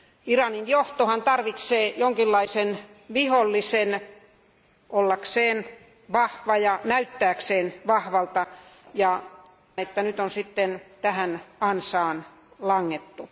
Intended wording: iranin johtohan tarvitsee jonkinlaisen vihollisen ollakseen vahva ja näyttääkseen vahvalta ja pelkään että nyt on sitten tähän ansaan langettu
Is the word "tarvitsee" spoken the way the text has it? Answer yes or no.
yes